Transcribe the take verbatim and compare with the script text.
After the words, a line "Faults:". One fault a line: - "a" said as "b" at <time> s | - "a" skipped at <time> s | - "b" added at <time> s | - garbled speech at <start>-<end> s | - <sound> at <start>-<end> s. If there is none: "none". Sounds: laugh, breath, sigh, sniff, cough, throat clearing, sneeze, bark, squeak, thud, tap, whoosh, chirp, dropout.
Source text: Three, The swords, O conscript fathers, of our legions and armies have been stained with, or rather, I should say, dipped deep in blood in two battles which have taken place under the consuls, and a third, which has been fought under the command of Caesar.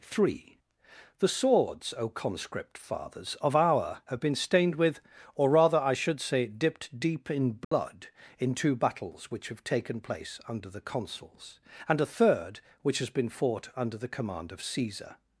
Three, The swords, O conscript fathers, of our have been stained with, or rather, I should say, dipped deep in blood in two battles which have taken place under the consuls, and a third, which has been fought under the command of Caesar.
Faults:
- "legions and armies" skipped at 4.0 s
- dropout at 7.6-7.7 s